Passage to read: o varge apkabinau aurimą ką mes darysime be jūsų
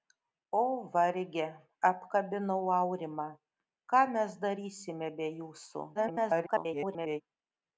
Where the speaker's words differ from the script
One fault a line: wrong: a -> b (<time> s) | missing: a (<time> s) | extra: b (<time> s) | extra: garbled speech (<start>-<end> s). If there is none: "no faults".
extra: garbled speech (5.9-7.2 s)